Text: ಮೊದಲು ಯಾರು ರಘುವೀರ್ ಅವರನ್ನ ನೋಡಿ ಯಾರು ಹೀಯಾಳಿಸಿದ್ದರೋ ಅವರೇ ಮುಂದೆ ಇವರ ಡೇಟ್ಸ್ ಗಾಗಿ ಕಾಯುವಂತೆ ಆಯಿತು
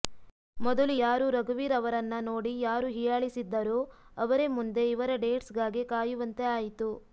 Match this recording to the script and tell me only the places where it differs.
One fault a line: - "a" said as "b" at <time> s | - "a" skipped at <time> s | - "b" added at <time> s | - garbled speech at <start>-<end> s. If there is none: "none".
none